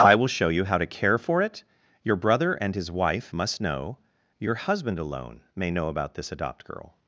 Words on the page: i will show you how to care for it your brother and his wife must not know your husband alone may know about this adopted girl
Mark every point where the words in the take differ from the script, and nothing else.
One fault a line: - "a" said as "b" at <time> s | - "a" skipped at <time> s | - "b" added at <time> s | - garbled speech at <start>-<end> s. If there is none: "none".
- "not" skipped at 3.6 s
- "adopted" said as "adopt" at 6.3 s